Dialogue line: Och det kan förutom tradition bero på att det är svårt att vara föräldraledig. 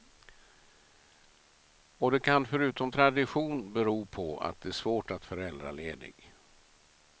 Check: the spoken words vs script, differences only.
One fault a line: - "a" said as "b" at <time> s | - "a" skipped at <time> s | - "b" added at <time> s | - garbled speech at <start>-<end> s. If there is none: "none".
- "vara" skipped at 5.3 s